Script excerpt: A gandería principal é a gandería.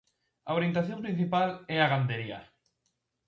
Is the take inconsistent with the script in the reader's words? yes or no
yes